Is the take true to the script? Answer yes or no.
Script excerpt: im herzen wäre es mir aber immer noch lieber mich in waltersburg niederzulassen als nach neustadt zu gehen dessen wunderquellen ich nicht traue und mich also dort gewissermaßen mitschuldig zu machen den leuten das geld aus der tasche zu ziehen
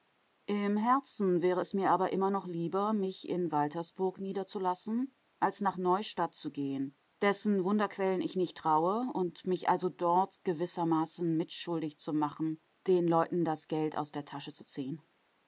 yes